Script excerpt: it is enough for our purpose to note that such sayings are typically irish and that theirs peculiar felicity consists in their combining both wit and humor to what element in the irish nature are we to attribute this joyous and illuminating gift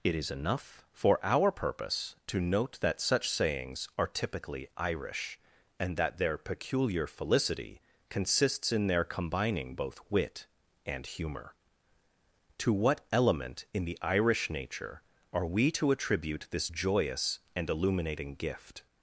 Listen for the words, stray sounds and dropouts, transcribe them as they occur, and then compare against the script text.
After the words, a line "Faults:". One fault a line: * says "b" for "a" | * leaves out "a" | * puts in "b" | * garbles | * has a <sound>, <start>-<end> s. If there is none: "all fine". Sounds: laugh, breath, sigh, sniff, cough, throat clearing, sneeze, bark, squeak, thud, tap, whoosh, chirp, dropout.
it is enough for our purpose to note that such sayings are typically irish and that their peculiar felicity consists in their combining both wit and humor to what element in the irish nature are we to attribute this joyous and illuminating gift
Faults:
* says "their" for "theirs"